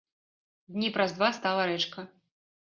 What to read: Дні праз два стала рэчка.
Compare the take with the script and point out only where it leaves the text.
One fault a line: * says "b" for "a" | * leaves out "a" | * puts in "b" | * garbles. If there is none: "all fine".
all fine